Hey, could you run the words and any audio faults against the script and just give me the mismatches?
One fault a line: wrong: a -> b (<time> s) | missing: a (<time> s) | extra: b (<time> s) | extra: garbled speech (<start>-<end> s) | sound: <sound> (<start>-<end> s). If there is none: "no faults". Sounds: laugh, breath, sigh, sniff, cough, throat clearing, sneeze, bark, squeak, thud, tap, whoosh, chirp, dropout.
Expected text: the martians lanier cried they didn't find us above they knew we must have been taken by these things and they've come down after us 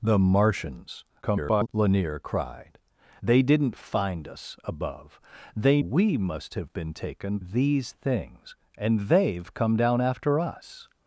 extra: garbled speech (1.2-1.7 s)
missing: knew (5.8 s)
missing: by (7.4 s)